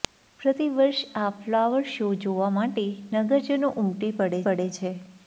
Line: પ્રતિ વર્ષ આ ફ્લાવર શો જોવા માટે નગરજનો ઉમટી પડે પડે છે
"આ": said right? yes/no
yes